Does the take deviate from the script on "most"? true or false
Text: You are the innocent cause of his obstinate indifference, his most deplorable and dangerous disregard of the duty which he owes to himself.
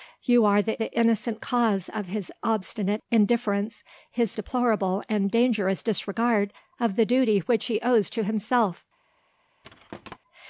true